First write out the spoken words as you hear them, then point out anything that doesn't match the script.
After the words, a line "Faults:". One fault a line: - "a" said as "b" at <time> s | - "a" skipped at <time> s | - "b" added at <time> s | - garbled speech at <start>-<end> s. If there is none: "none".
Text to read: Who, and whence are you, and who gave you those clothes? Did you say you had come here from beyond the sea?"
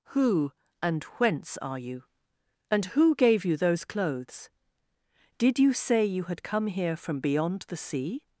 Who, and whence are you, and who gave you those clothes? Did you say you had come here from beyond the sea?"
Faults:
none